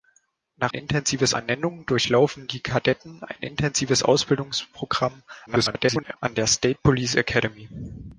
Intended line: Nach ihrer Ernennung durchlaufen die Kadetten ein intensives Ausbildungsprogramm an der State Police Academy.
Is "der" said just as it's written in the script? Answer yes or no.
yes